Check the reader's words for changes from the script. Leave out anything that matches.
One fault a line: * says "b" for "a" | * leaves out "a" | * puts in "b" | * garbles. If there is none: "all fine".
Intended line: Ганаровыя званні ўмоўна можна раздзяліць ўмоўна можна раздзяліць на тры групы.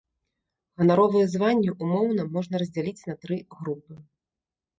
* leaves out "ўмоўна можна раздзяліць"